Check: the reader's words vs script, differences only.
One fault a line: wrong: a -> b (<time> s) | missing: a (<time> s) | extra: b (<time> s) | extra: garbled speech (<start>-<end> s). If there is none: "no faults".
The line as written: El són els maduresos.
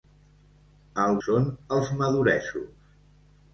no faults